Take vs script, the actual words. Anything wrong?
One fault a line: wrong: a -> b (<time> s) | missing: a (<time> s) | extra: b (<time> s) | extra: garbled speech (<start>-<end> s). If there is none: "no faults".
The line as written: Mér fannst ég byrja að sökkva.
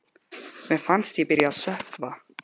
no faults